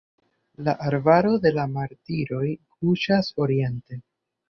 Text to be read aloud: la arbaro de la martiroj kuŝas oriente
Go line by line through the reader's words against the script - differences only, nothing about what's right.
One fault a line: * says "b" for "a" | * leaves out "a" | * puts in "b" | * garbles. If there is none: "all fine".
all fine